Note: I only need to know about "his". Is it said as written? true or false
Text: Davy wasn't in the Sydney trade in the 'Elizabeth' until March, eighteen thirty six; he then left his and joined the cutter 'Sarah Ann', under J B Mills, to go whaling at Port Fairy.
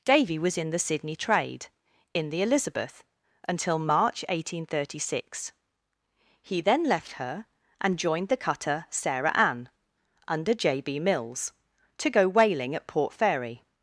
false